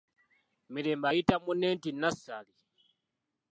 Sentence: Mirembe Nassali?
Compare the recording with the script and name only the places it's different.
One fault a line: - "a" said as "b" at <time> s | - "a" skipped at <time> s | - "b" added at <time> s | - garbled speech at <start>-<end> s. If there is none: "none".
- "ayita munne nti" added at 1.1 s